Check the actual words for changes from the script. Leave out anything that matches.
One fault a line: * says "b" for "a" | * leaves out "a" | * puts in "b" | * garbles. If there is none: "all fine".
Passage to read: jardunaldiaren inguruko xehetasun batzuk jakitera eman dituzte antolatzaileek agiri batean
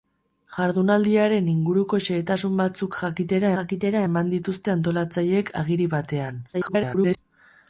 * puts in "jakitera"
* garbles